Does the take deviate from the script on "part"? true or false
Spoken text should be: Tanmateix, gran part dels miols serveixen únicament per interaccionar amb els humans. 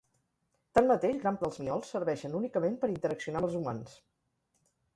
true